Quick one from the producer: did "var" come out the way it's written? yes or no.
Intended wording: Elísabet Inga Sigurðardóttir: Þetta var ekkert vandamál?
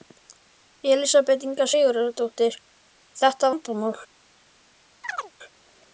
no